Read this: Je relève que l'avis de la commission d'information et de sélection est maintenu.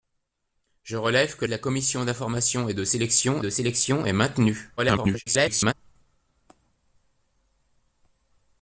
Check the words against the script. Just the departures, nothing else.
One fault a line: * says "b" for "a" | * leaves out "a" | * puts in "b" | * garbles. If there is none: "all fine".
* leaves out "l'avis"
* puts in "de sélection"
* garbles